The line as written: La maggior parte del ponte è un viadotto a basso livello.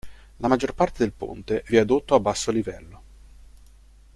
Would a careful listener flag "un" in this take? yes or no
yes